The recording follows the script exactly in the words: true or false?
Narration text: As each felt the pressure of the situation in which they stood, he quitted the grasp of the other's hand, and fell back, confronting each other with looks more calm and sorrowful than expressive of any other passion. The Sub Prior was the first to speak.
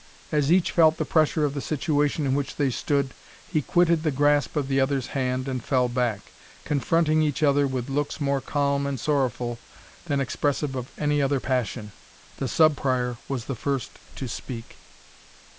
true